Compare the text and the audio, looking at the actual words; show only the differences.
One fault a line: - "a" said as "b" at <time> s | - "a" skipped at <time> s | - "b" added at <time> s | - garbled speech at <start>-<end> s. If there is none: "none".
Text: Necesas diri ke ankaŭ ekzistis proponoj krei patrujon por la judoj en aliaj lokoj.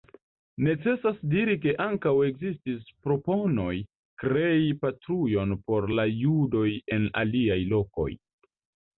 none